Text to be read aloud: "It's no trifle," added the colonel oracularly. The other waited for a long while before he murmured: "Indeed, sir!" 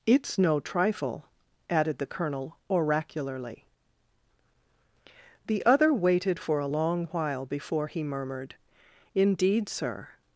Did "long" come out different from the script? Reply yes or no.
no